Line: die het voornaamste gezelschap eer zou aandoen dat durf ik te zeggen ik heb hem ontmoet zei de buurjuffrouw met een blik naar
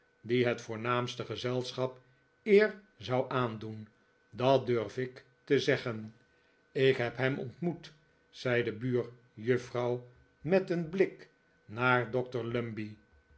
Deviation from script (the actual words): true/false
false